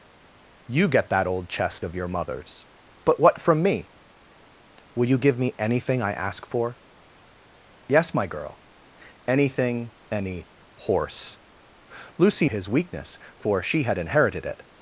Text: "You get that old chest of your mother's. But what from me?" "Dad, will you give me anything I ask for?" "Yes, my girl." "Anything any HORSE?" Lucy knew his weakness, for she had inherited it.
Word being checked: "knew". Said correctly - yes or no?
no